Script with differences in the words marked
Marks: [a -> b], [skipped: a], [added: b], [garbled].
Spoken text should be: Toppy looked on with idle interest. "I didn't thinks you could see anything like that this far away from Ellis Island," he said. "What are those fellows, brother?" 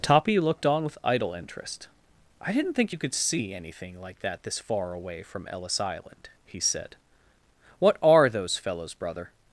Toppy looked on with idle interest. "I didn't [thinks -> think] you could see anything like that this far away from Ellis Island," he said. "What are those fellows, brother?"